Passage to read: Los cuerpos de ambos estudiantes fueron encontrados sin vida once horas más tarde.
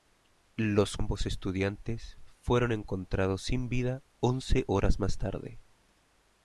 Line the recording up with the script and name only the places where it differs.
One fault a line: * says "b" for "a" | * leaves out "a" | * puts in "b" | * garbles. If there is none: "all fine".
* leaves out "cuerpos de"